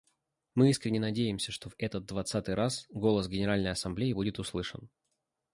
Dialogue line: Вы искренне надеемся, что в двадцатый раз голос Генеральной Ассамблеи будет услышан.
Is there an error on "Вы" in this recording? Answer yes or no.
yes